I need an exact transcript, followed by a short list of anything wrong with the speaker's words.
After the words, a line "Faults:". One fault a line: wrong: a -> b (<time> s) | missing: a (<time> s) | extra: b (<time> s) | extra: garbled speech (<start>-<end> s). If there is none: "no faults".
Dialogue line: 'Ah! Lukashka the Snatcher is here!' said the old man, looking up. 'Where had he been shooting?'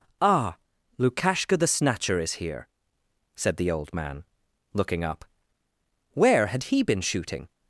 'Ah! Lukashka the Snatcher is here!' said the old man, looking up. 'Where had he been shooting?'
Faults:
no faults